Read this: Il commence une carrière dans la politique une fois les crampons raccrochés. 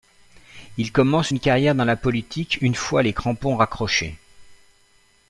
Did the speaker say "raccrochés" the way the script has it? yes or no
yes